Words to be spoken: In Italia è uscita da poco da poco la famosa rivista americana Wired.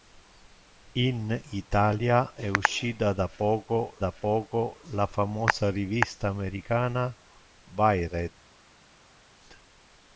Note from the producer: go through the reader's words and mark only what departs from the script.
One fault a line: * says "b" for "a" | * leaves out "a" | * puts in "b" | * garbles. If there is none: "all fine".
all fine